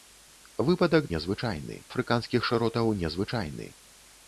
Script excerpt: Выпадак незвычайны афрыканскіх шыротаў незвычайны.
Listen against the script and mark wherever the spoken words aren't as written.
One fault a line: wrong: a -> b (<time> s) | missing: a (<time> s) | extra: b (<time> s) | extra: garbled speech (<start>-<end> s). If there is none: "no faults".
no faults